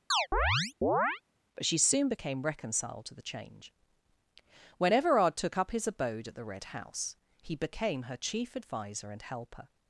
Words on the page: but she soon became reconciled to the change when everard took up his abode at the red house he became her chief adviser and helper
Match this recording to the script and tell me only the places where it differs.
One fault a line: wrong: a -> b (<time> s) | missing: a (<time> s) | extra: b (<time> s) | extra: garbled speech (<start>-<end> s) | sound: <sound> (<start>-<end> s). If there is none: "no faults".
sound: chirp (0.1-1.2 s)